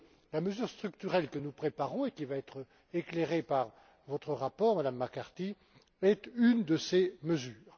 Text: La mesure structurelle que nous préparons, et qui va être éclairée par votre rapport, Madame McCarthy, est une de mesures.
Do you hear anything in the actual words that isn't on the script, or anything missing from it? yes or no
yes